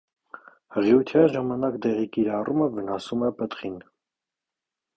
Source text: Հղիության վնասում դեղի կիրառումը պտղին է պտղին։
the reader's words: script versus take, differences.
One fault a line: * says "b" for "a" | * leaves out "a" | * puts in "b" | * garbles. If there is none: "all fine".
* says "ժամանակ" for "վնասում"
* says "վնասում" for "պտղին"